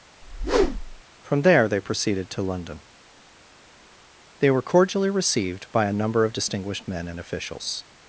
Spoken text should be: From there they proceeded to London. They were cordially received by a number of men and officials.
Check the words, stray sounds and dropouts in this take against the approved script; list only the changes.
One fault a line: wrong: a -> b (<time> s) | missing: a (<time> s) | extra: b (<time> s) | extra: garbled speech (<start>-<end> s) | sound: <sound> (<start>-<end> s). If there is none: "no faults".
sound: whoosh (0.2-1.0 s)
extra: distinguished (6.3 s)